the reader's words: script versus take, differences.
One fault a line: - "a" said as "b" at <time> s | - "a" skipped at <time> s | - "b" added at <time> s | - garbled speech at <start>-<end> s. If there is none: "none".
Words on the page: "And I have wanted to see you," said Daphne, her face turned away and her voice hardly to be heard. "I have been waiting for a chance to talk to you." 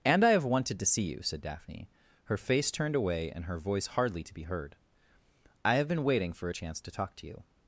none